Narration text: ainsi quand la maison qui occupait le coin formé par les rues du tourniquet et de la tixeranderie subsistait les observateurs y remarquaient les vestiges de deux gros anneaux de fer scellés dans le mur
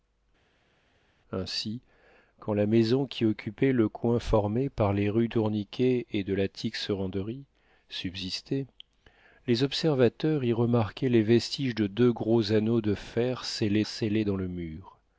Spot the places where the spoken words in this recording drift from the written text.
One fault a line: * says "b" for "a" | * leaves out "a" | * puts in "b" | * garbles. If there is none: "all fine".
* leaves out "du"
* puts in "scellés"